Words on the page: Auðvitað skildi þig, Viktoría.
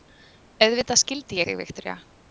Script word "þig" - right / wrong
right